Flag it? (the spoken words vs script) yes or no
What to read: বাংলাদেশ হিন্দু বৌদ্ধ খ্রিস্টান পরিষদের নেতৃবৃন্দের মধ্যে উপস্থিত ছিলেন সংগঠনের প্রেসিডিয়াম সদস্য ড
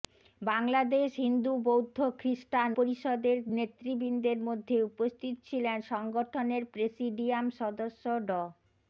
no